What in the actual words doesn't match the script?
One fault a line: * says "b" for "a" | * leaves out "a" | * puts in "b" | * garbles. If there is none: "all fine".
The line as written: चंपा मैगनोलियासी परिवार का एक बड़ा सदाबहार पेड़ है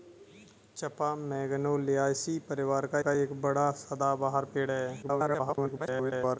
* puts in "का"
* garbles